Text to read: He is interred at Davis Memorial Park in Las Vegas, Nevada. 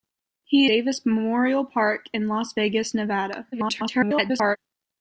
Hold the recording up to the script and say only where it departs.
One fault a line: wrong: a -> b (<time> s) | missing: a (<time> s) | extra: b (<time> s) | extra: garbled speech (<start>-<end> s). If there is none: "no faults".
missing: is interred at (0.7 s)
extra: garbled speech (3.5-4.6 s)